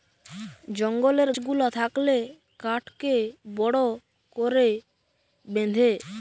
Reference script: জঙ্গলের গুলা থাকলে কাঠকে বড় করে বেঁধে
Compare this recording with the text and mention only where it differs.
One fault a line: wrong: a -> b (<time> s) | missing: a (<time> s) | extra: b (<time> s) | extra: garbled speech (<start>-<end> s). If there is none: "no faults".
no faults